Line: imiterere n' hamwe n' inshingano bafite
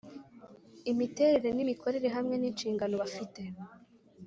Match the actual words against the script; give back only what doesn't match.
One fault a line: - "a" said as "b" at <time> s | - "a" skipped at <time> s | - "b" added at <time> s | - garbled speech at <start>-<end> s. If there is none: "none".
- "imikorere" added at 1.6 s